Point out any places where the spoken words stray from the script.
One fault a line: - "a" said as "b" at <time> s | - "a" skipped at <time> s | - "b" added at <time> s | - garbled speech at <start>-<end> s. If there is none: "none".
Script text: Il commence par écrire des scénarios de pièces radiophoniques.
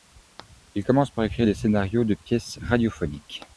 none